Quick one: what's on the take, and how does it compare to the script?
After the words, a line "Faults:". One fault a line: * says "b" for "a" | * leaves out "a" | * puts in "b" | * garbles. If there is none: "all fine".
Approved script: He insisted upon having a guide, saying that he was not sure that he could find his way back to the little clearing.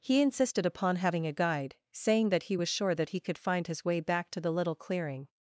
He insisted upon having a guide, saying that he was sure that he could find his way back to the little clearing.
Faults:
* leaves out "not"